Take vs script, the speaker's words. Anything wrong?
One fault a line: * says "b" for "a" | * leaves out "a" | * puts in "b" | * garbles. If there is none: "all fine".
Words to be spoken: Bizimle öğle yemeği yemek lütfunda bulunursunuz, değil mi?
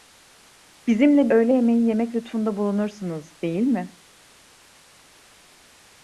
all fine